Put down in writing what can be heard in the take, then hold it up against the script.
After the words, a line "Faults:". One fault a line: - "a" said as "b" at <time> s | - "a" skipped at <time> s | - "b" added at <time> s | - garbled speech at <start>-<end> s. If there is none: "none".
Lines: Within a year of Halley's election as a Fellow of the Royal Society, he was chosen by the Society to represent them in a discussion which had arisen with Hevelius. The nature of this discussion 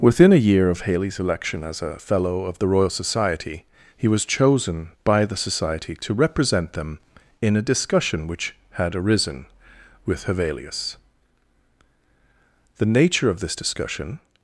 Within a year of Halley's election as a Fellow of the Royal Society, he was chosen by the Society to represent them in a discussion which had arisen with Hevelius. The nature of this discussion
Faults:
none